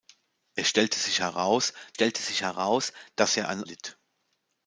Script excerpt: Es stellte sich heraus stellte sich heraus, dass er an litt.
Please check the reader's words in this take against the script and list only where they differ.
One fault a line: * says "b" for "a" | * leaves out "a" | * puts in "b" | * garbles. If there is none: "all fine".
all fine